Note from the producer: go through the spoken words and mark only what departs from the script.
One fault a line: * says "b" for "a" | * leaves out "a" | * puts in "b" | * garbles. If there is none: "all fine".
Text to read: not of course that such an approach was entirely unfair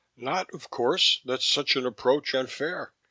* leaves out "was entirely"